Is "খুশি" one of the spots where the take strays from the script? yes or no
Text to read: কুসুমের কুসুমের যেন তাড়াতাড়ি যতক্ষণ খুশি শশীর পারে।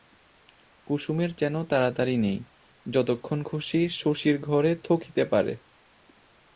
no